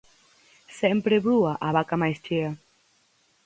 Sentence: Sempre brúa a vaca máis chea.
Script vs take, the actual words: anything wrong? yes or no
no